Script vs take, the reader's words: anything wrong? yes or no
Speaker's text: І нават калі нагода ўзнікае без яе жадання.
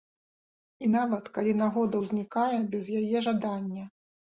no